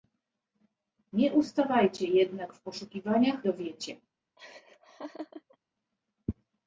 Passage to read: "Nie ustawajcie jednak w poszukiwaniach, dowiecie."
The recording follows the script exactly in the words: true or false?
true